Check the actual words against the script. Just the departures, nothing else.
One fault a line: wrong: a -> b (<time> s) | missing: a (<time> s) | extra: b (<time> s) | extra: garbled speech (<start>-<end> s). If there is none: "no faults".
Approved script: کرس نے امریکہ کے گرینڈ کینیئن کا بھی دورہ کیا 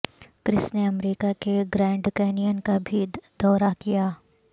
no faults